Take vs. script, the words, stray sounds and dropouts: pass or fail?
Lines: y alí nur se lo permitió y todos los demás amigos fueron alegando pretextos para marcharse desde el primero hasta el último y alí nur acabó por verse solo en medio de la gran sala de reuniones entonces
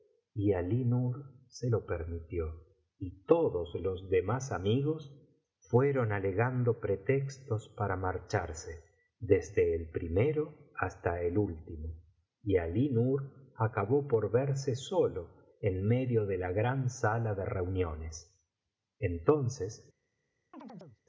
fail